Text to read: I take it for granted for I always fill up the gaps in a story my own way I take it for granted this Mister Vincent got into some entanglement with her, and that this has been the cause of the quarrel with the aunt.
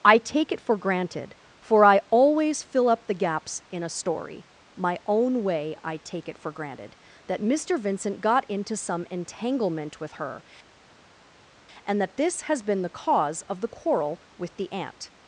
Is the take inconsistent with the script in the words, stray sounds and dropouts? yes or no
yes